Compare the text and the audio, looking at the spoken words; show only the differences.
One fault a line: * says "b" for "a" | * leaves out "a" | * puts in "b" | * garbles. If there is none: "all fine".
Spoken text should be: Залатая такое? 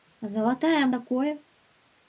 all fine